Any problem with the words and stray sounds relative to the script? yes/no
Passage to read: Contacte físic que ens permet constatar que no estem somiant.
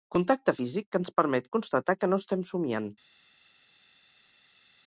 no